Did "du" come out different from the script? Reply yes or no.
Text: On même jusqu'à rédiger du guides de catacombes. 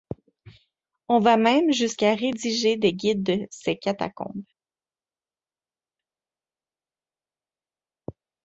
yes